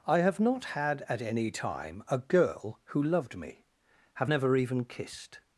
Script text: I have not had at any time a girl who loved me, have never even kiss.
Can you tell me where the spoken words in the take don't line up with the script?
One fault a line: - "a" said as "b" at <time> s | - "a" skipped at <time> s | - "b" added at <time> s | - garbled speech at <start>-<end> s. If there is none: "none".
- "kiss" said as "kissed" at 4.8 s